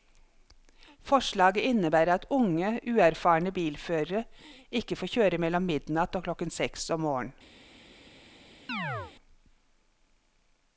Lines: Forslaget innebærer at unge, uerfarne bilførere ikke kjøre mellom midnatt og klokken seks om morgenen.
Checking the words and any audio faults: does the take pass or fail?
fail